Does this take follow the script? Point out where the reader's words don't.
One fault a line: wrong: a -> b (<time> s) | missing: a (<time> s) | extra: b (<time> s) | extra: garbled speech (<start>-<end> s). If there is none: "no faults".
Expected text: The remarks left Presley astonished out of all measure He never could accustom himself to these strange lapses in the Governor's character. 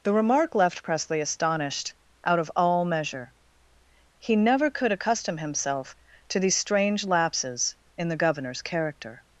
wrong: remarks -> remark (0.1 s)